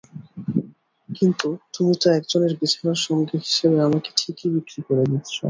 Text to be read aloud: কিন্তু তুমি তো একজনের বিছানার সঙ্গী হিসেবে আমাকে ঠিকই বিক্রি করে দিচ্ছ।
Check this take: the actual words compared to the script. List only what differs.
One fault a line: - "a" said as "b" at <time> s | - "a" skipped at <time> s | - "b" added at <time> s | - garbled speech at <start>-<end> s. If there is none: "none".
none